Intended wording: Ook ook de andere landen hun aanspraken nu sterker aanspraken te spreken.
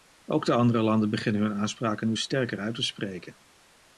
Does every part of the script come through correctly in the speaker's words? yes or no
no